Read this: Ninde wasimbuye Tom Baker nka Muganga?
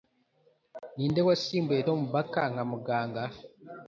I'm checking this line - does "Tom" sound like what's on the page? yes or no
yes